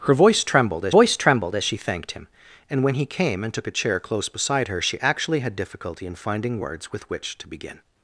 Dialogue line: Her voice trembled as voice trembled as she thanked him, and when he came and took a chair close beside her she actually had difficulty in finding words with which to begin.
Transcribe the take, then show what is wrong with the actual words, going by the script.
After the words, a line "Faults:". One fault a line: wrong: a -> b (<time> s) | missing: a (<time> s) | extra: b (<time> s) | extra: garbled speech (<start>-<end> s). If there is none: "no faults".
Her voice trembled as voice trembled as she thanked him, and when he came and took a chair close beside her she actually had difficulty in finding words with which to begin.
Faults:
no faults